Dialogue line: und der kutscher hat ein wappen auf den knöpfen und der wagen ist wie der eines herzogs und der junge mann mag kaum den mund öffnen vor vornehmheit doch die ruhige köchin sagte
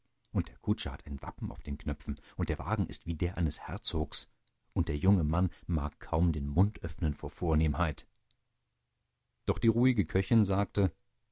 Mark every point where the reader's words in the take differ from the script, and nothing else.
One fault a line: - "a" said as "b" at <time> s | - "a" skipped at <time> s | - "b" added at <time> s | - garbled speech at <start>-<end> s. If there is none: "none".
none